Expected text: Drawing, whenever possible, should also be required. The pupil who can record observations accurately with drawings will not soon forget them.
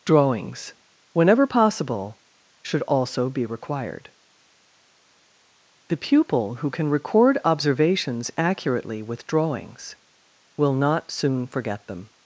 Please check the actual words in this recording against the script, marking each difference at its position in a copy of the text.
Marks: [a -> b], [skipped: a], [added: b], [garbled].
[Drawing, -> Drawings] whenever possible, should also be required. The pupil who can record observations accurately with drawings will not soon forget them.